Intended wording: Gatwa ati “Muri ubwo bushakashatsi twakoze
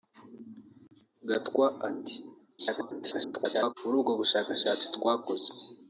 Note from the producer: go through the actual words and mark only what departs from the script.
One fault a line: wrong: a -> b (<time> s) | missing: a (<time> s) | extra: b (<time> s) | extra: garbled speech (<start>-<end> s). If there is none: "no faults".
extra: garbled speech (2.6-3.7 s)